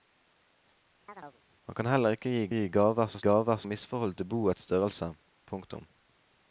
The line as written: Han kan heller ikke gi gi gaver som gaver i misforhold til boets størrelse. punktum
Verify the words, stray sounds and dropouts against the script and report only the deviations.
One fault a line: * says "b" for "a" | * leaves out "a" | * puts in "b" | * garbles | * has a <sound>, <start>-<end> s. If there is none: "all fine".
* has a chirp, 1.1-1.4 s